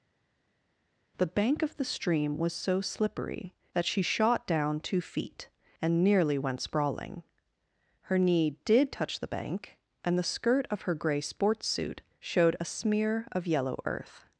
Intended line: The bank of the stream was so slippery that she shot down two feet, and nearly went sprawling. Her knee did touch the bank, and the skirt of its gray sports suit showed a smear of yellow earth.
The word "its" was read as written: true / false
false